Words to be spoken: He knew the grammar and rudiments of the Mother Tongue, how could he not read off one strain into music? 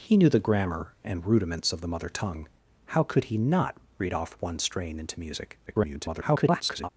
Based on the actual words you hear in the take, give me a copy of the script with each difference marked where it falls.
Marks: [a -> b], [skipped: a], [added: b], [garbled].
He knew the grammar and rudiments of the Mother Tongue, how could he not read off one strain into music? [garbled]